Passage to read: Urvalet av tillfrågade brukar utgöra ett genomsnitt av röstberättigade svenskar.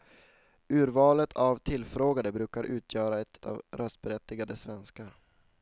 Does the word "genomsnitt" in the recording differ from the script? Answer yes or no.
yes